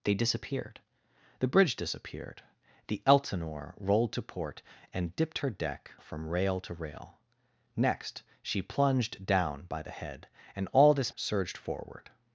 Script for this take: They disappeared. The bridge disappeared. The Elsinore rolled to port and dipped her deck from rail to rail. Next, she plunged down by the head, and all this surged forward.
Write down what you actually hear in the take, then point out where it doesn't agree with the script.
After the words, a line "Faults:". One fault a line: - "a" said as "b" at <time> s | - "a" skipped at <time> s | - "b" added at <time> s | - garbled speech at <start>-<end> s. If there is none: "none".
They disappeared. The bridge disappeared. The Elsinore rolled to port and dipped her deck from rail to rail. Next, she plunged down by the head, and all this surged forward.
Faults:
none